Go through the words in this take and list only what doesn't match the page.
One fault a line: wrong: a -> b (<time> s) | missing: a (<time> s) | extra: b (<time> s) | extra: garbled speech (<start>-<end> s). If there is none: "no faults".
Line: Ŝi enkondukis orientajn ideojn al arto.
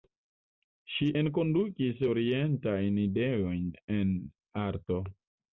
wrong: al -> en (4.0 s)